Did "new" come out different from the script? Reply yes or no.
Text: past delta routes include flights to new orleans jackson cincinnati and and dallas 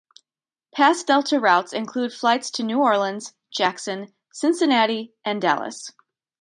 no